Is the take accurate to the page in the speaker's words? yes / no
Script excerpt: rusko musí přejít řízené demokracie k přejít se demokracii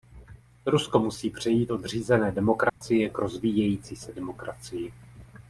no